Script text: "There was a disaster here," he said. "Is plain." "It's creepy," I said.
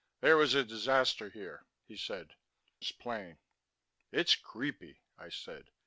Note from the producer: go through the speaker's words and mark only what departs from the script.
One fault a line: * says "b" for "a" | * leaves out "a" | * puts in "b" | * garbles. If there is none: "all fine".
all fine